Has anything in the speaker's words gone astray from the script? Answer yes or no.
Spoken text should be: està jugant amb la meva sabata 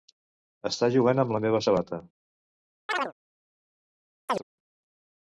no